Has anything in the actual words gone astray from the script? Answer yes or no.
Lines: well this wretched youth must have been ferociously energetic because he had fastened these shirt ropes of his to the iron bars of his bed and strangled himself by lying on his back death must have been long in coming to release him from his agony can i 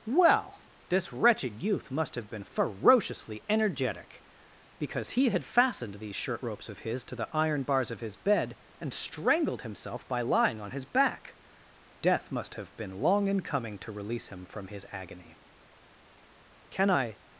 no